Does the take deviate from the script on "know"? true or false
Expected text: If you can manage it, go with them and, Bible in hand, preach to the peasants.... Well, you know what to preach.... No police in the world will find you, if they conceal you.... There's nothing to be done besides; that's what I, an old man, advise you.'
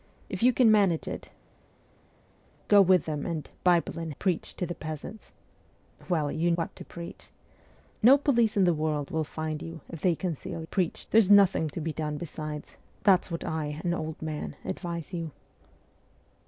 true